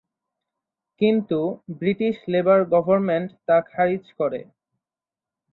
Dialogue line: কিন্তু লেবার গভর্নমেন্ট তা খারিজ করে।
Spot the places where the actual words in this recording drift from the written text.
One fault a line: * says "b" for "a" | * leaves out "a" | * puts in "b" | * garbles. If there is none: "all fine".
* puts in "ব্রিটিশ"